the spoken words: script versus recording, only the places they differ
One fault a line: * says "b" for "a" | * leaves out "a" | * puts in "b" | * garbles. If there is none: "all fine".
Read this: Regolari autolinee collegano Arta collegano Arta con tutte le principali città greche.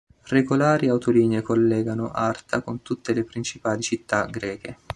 * leaves out "collegano Arta"